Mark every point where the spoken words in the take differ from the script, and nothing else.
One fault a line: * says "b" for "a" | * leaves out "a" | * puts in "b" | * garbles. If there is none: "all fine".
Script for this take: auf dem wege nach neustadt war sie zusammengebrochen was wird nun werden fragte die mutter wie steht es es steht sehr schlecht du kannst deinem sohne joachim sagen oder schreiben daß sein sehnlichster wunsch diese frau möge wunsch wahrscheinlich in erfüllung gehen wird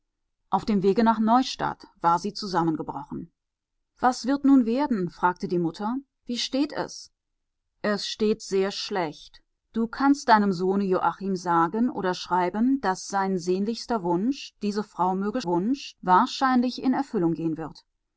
all fine